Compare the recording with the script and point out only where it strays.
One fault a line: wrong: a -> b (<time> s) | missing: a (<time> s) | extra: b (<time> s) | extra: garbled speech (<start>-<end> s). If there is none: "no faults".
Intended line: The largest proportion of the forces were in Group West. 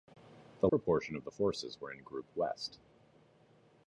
missing: largest (0.7 s)